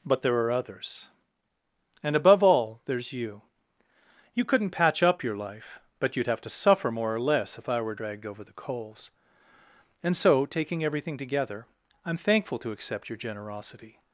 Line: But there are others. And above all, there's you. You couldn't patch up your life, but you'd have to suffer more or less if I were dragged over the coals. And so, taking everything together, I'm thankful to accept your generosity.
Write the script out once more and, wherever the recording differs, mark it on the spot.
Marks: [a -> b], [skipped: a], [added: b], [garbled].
But there are others. And above all, there's you. You couldn't patch up your life, but you'd have to suffer more or less if I were dragged over the coals. And so, taking everything together, I'm thankful to accept your generosity.